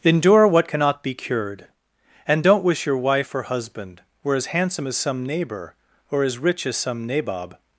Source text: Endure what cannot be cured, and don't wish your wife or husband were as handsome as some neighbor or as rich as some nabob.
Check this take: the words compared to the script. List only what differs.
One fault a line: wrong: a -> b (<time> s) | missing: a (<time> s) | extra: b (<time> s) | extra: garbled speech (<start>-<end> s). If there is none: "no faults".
no faults